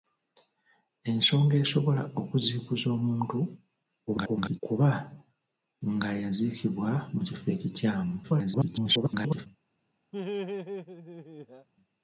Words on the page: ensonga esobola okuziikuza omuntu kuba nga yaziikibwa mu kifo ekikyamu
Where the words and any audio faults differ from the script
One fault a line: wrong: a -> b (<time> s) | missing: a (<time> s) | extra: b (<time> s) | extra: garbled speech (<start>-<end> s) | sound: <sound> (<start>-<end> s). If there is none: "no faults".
extra: garbled speech (4.1-4.6 s)
extra: garbled speech (8.2-9.5 s)
sound: laugh (10.1-11.7 s)